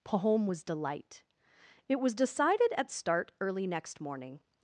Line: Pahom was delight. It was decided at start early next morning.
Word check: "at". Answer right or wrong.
right